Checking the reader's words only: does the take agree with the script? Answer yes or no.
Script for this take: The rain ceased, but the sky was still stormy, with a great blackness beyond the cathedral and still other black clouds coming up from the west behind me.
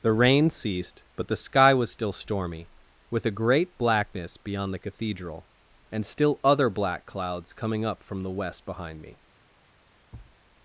yes